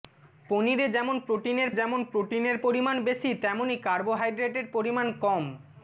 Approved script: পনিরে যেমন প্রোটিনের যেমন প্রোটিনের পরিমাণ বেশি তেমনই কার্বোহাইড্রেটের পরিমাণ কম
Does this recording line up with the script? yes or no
yes